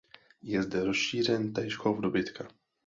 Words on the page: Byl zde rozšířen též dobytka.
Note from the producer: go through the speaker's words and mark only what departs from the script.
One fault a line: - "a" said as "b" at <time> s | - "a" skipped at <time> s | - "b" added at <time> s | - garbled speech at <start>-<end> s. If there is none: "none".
- "Byl" said as "Je" at 0.4 s
- "chov" added at 1.7 s